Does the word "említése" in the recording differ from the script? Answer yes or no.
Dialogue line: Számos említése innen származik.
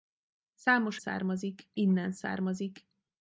yes